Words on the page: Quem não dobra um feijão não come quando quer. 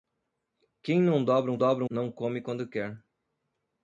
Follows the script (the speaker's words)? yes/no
no